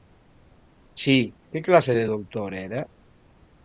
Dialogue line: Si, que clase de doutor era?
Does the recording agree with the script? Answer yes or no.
yes